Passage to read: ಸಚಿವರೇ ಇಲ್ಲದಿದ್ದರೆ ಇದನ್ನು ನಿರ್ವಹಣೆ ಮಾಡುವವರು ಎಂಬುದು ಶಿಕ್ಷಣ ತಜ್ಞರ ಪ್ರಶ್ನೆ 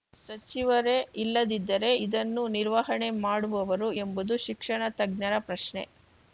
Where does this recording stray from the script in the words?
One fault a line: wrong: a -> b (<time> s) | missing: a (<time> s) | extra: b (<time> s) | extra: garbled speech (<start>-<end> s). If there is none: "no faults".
no faults